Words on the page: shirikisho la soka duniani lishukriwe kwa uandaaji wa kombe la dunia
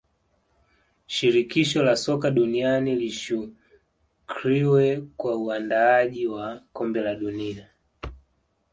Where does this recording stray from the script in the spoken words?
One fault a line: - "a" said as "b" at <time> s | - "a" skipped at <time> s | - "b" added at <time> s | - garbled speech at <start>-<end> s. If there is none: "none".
none